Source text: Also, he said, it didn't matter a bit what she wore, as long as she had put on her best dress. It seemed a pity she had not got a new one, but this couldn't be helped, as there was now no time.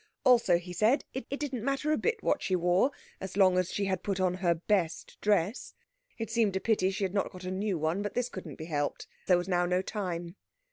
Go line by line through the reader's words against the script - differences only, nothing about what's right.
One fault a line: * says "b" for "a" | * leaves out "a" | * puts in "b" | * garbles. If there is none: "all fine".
* puts in "it"
* leaves out "as"